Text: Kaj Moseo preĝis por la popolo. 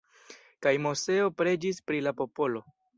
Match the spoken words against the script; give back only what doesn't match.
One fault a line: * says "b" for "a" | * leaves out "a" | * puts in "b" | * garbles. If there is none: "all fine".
* says "pri" for "por"